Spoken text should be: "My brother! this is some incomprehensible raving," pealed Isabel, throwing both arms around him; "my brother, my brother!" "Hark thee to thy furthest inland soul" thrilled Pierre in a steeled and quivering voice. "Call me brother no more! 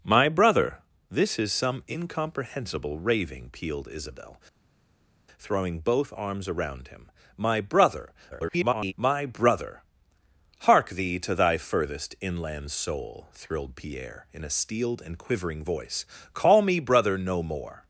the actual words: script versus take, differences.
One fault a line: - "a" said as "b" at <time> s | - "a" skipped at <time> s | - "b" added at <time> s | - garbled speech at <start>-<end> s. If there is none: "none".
- garbled speech at 8.3-8.9 s